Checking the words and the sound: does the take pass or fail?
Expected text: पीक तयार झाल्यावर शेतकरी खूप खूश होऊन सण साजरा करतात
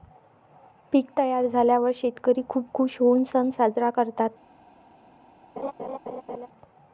fail